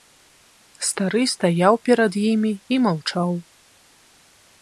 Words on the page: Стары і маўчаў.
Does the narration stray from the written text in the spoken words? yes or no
yes